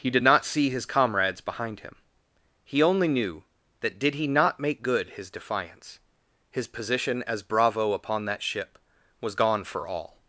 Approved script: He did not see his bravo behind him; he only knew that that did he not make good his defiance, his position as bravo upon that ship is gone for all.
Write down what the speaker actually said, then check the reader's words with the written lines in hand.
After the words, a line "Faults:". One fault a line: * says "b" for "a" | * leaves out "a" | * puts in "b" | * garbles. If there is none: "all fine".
He did not see his comrades behind him; he only knew that did he not make good his defiance, his position as bravo upon that ship was gone for all.
Faults:
* says "comrades" for "bravo"
* leaves out "that"
* says "was" for "is"